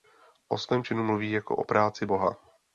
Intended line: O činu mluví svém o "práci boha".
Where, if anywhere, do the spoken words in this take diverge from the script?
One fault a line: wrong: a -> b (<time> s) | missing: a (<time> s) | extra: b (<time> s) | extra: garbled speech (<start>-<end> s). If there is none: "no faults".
extra: svém (0.6 s)
wrong: svém -> jako (1.3 s)